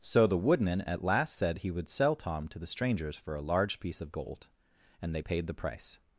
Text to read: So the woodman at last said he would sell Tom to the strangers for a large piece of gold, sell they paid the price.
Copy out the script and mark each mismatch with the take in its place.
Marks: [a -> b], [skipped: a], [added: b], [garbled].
So the woodman at last said he would sell Tom to the strangers for a large piece of gold, [sell -> and] they paid the price.